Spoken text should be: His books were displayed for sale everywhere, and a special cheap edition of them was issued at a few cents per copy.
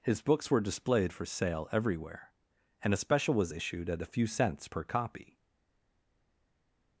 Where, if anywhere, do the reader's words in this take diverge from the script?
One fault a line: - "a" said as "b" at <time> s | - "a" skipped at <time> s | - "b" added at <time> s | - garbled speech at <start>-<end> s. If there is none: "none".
- "cheap edition of them" skipped at 3.3 s